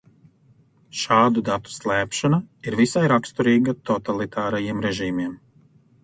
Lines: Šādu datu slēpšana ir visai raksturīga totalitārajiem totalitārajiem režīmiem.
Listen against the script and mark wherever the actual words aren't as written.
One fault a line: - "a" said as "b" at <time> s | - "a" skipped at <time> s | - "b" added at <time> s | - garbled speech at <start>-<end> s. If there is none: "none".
- "totalitārajiem" skipped at 4.8 s